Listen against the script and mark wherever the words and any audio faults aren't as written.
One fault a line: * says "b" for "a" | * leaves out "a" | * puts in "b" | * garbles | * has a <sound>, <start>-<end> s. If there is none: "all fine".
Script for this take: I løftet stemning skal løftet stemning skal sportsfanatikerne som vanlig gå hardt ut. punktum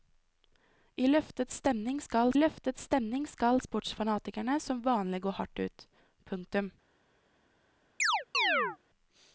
* has a chirp, 8.0-8.8 s